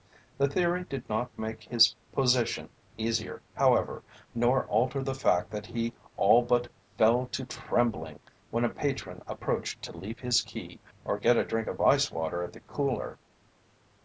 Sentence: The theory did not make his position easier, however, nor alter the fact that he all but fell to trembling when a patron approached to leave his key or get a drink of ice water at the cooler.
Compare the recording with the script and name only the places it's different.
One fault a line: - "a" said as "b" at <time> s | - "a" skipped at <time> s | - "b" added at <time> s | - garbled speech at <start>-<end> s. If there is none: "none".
none